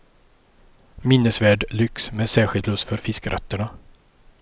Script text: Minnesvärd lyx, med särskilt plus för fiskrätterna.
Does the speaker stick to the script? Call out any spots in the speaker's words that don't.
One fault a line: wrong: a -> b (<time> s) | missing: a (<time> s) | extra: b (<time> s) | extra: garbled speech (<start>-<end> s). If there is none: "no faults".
no faults